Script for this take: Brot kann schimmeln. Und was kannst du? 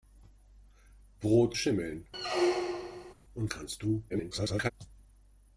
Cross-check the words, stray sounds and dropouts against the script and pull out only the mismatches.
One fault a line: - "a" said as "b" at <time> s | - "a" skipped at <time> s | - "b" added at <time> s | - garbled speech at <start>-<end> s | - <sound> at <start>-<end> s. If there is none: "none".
- "kann" skipped at 1.6 s
- squeak at 2.1-3.1 s
- "was" skipped at 3.5 s
- garbled speech at 4.1-4.7 s